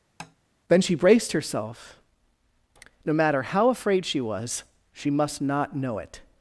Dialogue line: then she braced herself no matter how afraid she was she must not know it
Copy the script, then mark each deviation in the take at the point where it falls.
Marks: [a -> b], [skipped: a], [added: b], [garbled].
then she braced herself no matter how afraid she was she must not know it